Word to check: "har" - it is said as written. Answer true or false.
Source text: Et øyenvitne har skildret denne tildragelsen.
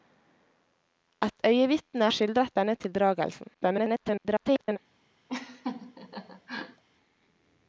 false